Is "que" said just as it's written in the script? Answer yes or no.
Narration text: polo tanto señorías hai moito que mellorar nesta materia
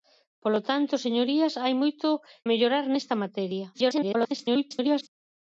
no